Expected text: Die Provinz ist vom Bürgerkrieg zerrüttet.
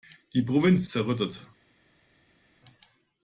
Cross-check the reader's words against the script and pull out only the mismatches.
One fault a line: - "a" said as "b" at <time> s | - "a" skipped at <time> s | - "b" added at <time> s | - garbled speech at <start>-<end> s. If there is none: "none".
- "ist vom Bürgerkrieg" skipped at 0.9 s